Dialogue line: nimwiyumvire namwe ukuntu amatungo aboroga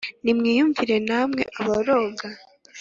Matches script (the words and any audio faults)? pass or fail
fail